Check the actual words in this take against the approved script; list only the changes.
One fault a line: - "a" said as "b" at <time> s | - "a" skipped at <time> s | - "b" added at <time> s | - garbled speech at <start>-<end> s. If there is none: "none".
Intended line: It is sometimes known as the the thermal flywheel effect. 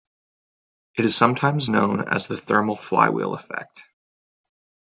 - "the" skipped at 2.3 s